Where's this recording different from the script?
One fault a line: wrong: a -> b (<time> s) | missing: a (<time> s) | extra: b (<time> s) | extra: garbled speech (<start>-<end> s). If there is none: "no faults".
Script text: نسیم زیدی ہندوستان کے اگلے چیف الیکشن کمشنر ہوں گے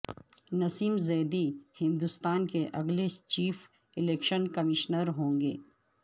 no faults